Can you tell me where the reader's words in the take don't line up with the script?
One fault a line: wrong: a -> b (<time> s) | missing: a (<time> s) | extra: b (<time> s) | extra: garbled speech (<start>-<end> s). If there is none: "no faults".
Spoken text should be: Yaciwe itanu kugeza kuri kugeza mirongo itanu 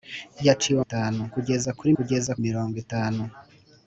no faults